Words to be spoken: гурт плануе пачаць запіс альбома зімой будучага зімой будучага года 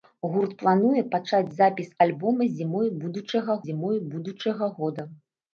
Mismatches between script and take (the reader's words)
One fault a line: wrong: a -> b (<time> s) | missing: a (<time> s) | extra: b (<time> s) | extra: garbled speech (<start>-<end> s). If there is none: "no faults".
no faults